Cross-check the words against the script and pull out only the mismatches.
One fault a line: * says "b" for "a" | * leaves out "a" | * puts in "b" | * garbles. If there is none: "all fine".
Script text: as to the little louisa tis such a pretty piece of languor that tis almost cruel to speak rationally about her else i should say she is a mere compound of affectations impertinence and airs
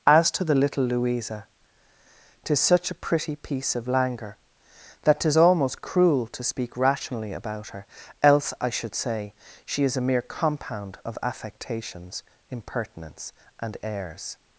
all fine